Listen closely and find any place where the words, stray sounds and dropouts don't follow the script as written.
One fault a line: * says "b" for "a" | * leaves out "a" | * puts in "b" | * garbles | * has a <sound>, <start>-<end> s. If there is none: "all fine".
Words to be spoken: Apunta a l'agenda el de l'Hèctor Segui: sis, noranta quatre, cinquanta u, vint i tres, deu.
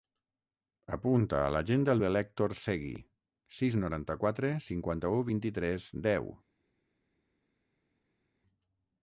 all fine